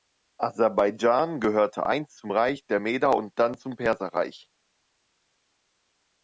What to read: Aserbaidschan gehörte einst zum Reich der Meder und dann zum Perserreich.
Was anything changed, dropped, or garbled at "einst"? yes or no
no